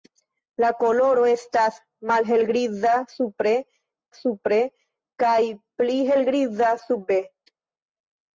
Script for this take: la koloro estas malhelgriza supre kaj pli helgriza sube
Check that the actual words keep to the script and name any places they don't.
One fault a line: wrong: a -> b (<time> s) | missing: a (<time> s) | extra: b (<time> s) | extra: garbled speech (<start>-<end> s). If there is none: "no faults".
extra: supre (4.2 s)